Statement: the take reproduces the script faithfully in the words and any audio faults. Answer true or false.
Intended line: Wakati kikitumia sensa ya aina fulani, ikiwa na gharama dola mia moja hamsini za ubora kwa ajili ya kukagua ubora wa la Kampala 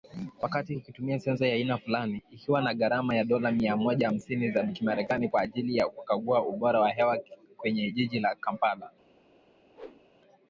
false